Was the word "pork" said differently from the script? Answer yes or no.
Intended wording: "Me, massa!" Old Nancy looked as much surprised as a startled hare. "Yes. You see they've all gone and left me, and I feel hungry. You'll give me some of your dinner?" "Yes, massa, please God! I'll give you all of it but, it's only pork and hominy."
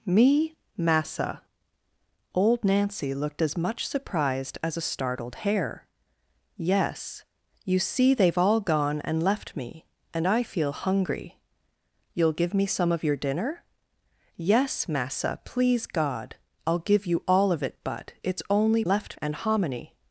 yes